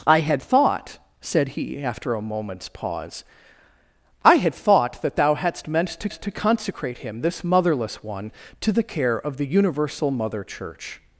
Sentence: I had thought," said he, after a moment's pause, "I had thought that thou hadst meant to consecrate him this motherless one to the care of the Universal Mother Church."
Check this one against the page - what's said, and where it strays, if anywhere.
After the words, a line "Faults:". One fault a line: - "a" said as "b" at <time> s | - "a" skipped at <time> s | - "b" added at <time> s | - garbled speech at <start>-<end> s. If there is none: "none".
I had thought," said he, after a moment's pause, "I had thought that thou hadst meant to to consecrate him this motherless one to the care of the Universal Mother Church."
Faults:
- "to" added at 6.1 s